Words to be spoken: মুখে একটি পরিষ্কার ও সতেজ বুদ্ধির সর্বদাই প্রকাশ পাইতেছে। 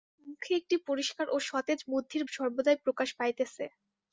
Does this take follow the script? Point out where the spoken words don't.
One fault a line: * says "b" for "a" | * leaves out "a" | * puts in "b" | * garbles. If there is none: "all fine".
all fine